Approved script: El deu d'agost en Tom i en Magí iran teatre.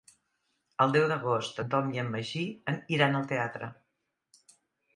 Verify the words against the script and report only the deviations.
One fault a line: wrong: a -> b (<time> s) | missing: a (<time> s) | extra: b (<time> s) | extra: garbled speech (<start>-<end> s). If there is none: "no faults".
extra: al (3.2 s)